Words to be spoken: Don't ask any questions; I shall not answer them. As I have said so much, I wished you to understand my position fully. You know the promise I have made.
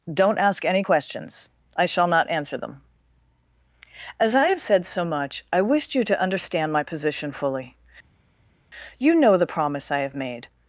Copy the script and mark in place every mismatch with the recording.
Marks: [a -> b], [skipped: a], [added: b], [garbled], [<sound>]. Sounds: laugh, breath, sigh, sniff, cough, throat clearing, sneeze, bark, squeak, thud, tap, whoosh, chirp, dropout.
Don't ask any questions; I shall not answer them. As I have said so much, I wished you to understand my position fully. You know the promise I have made.